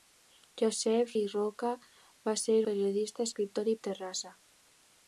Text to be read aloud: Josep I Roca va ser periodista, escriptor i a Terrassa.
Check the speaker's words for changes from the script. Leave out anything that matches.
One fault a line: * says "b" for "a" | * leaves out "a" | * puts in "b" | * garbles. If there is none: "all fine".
all fine